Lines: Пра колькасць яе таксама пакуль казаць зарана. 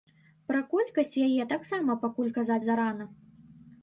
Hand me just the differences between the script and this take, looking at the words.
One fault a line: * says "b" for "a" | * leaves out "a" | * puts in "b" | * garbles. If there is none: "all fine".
all fine